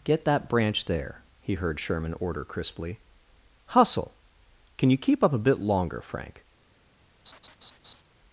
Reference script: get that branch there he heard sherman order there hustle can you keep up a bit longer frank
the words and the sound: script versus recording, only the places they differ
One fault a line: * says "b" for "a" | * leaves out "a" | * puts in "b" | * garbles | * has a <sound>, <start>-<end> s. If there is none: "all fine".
* says "crisply" for "there"
* has a laugh, 7.3-8.0 s